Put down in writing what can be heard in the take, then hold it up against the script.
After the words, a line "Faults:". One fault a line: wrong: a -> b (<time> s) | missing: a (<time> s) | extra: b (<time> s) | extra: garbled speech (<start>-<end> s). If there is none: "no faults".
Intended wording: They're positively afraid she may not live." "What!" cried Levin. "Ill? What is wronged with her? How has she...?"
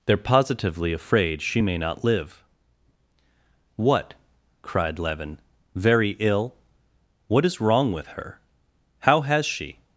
They're positively afraid she may not live." "What!" cried Levin. "Very ill? What is wrong with her? How has she...?"
Faults:
extra: Very (5.7 s)
wrong: wronged -> wrong (7.6 s)